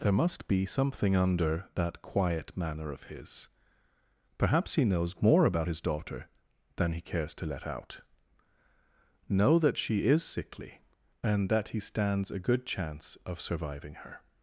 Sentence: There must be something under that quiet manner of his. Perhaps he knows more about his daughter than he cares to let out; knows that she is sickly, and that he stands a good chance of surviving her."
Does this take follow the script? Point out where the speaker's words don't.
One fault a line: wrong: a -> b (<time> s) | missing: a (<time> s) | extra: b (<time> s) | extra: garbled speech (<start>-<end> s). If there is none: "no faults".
wrong: knows -> know (9.3 s)